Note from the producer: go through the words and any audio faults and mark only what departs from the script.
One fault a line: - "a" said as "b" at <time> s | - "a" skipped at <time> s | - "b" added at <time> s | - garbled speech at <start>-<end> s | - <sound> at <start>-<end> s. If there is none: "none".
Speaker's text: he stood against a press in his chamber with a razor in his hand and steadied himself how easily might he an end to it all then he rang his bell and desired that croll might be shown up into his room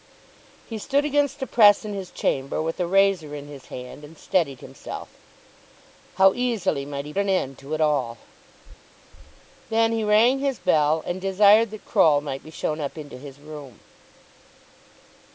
none